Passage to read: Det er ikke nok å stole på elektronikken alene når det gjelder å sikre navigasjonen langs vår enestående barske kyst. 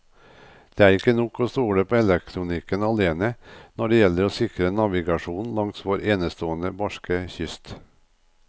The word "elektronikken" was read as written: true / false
true